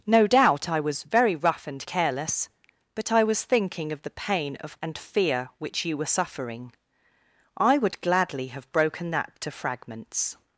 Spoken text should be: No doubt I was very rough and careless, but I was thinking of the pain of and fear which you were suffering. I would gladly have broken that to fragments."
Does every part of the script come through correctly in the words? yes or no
yes